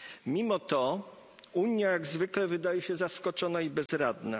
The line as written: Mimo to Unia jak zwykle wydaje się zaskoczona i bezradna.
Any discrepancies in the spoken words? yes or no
no